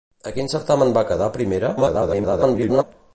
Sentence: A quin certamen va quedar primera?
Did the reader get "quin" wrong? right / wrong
right